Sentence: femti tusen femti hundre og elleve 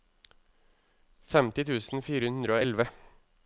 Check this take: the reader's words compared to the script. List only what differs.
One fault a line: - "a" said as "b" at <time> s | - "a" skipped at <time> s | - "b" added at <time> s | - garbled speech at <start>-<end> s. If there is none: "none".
- "femti" said as "fire" at 2.1 s